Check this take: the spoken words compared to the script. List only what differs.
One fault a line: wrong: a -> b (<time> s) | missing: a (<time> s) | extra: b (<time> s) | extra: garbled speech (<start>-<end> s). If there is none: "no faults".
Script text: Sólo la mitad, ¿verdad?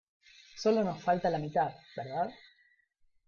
extra: nos falta (0.8 s)